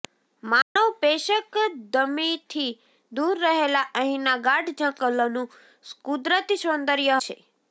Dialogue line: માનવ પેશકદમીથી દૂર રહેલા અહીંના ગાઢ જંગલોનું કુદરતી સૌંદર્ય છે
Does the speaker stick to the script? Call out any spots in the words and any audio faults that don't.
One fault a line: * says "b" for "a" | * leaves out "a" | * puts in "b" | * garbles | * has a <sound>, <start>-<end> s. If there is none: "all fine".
* has a dropout, 0.6-0.8 s